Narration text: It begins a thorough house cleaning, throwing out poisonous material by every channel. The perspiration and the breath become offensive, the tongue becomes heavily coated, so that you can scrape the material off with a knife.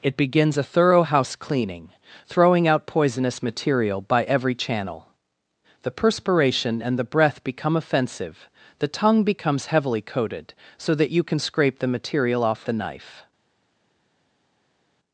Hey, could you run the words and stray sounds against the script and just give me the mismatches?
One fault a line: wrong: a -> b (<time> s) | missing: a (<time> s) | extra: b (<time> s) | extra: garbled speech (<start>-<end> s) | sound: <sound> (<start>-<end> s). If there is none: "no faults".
missing: with (12.6 s)